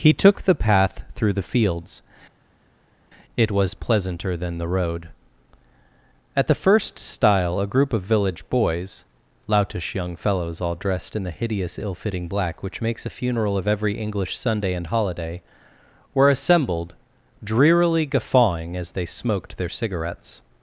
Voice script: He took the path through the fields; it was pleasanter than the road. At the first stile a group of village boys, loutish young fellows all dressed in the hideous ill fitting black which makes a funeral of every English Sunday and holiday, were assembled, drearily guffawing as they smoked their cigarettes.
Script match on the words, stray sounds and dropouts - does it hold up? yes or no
yes